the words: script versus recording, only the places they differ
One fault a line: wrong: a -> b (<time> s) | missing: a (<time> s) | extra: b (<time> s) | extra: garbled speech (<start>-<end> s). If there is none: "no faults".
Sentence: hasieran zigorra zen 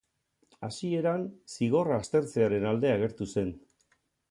extra: aztertzearen alde agertu (2.0 s)